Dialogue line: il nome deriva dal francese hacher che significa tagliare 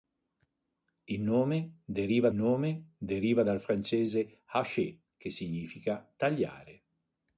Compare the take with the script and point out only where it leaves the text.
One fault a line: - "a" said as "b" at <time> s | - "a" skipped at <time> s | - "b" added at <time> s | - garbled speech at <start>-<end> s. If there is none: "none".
- "nome deriva" added at 2.3 s